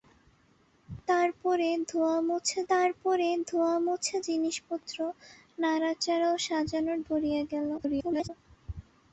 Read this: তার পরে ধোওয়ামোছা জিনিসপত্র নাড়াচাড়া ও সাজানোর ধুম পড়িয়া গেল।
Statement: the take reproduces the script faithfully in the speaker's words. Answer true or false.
false